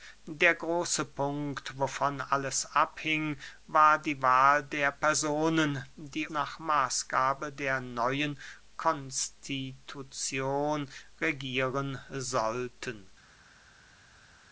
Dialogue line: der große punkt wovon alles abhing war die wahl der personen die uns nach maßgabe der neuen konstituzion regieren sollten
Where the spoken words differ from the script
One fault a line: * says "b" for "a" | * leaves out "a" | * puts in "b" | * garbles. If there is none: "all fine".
* leaves out "uns"